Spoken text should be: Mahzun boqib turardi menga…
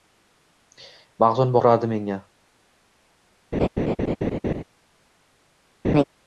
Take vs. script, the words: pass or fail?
fail